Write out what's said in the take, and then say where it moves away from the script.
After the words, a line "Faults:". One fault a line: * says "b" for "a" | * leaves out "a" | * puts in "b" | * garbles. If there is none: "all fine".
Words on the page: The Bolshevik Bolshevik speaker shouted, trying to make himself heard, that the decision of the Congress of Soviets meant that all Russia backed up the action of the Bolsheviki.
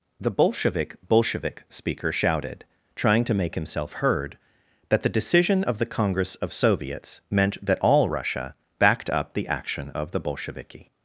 The Bolshevik Bolshevik speaker shouted, trying to make himself heard, that the decision of the Congress of Soviets meant that all Russia backed up the action of the Bolsheviki.
Faults:
all fine